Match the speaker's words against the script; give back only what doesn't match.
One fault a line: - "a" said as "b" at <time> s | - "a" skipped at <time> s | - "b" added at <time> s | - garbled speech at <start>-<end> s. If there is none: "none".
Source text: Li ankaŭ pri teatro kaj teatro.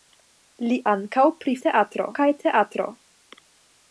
none